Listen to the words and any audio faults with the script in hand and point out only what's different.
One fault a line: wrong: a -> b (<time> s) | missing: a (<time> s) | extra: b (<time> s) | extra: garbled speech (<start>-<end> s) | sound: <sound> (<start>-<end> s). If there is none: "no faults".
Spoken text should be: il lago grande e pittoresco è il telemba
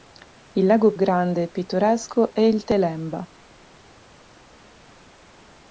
no faults